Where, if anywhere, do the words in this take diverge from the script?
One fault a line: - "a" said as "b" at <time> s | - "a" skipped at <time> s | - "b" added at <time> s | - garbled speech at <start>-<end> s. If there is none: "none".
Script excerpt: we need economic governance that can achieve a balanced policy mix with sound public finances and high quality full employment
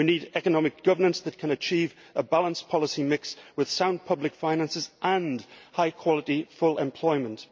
none